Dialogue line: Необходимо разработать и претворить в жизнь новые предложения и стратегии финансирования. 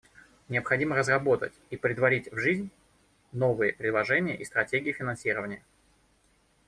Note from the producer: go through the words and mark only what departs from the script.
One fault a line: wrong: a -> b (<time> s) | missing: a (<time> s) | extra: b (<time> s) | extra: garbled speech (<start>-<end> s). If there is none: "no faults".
no faults